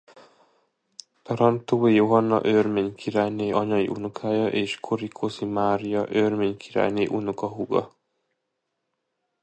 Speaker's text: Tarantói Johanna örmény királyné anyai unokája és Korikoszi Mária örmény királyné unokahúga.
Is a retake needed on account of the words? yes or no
no